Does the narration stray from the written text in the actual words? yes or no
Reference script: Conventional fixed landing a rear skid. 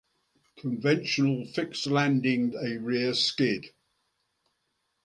no